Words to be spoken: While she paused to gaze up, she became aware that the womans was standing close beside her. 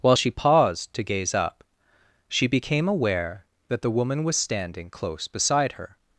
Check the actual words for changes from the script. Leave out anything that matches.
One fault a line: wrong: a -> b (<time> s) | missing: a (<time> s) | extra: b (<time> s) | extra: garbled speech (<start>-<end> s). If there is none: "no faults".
wrong: womans -> woman (3.9 s)